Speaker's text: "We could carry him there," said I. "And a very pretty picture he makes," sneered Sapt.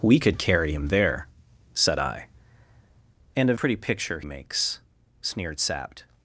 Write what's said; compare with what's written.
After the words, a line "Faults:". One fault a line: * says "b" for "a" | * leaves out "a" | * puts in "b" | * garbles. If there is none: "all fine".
"We could carry him there," said I. "And a pretty picture makes," sneered Sapt.
Faults:
* leaves out "very"
* leaves out "he"